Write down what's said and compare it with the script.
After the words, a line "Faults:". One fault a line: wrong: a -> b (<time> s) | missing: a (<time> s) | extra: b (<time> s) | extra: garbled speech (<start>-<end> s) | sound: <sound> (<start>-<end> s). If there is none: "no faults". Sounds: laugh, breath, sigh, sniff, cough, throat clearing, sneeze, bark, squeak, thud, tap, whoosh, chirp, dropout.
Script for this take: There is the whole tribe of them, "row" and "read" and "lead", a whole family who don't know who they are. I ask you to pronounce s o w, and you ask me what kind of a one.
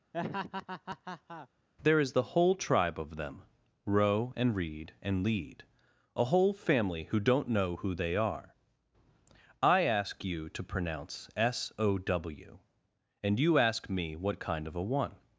There is the whole tribe of them, "row" and "read" and "lead", a whole family who don't know who they are. I ask you to pronounce s o w, and you ask me what kind of a one.
Faults:
sound: laugh (0.1-1.5 s)